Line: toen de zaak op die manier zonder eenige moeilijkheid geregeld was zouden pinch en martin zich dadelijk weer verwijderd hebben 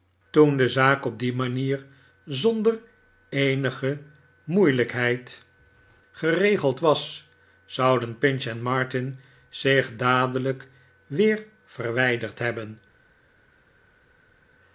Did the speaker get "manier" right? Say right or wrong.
right